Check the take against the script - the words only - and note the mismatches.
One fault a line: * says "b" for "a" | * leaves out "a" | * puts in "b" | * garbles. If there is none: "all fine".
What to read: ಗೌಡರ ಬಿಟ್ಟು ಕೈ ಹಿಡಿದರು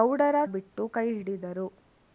all fine